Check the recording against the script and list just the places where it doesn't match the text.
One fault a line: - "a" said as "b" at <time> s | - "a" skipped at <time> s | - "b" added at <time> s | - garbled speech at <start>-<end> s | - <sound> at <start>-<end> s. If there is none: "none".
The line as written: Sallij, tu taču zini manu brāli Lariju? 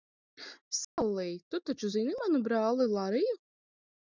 - dropout at 0.8-1.0 s